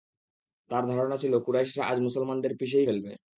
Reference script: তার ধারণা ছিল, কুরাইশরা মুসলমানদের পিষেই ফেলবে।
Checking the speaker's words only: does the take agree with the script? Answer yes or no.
no